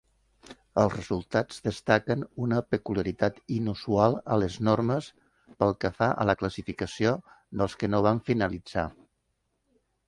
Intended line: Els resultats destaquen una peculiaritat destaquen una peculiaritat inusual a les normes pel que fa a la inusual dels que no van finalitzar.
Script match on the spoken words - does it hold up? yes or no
no